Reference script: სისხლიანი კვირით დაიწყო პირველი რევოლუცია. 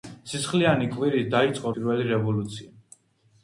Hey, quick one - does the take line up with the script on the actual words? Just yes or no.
yes